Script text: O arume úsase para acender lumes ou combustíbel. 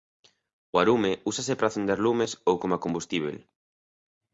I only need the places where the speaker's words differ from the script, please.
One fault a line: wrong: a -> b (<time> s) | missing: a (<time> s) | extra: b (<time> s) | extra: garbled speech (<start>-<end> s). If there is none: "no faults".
extra: coma (2.6 s)